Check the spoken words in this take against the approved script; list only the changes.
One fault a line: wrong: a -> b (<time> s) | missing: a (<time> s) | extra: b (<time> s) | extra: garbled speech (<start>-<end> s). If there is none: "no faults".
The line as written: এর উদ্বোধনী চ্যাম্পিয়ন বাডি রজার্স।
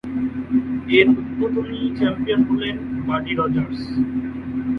extra: হলেন (2.5 s)